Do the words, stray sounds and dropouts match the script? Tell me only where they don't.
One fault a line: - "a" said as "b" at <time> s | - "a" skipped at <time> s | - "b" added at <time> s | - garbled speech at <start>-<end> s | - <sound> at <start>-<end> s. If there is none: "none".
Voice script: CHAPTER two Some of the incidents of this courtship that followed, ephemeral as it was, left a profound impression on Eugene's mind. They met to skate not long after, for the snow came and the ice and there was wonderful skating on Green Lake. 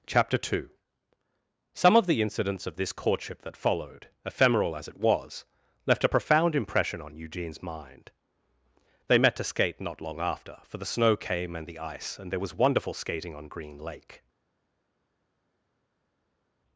none